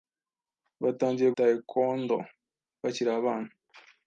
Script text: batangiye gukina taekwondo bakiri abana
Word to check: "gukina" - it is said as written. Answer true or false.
false